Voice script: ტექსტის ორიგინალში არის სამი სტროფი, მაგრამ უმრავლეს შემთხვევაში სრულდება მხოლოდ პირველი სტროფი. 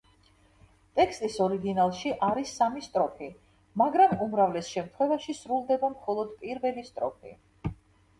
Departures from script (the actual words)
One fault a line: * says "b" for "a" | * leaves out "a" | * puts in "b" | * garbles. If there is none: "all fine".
all fine